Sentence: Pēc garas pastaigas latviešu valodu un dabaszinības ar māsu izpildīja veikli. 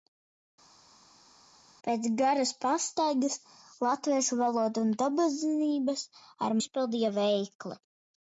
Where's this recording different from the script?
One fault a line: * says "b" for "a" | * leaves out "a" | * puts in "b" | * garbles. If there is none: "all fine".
* leaves out "māsu"